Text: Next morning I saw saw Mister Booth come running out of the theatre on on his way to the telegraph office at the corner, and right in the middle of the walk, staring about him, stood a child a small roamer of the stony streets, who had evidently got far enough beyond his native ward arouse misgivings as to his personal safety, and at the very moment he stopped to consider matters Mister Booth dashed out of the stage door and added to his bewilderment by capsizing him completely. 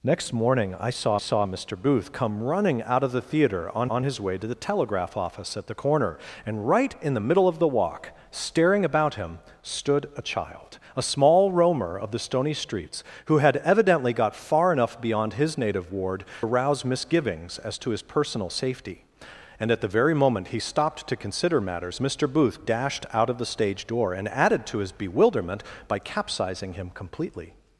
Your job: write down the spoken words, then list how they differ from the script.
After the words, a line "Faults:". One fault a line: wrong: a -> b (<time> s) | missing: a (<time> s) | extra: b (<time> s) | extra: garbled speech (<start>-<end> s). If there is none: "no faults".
Next morning I saw saw Mister Booth come running out of the theatre on on his way to the telegraph office at the corner, and right in the middle of the walk, staring about him, stood a child a small roamer of the stony streets, who had evidently got far enough beyond his native ward arouse misgivings as to his personal safety, and at the very moment he stopped to consider matters Mister Booth dashed out of the stage door and added to his bewilderment by capsizing him completely.
Faults:
no faults